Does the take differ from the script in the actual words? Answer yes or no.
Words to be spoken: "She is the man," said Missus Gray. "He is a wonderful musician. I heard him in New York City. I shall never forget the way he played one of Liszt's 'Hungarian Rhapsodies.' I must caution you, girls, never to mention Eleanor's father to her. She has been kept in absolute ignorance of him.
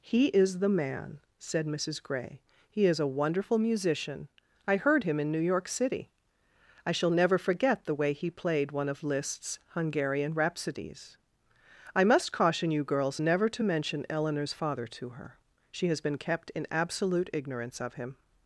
yes